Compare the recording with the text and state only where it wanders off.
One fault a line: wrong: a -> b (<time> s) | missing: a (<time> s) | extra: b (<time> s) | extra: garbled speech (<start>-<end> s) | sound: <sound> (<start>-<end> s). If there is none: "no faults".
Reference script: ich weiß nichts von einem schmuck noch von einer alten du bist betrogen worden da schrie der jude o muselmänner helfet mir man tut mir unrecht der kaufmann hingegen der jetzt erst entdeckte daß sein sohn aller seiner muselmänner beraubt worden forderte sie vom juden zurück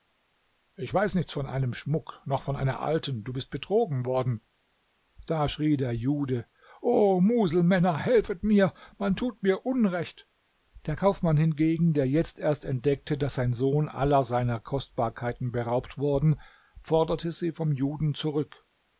wrong: muselmänner -> kostbarkeiten (14.6 s)